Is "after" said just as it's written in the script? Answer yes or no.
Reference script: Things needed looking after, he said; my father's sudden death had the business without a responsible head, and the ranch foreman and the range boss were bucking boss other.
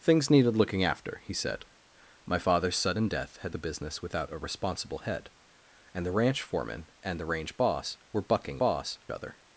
yes